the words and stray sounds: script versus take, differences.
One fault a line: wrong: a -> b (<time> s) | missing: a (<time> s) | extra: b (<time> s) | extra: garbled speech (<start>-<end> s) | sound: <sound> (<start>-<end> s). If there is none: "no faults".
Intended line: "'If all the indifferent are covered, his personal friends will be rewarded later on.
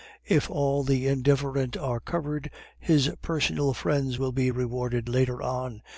no faults